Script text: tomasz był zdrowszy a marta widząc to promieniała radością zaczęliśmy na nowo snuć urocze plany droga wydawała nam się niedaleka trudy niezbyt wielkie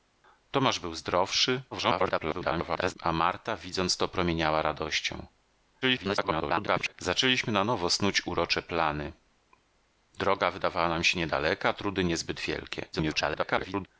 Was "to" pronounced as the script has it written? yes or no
yes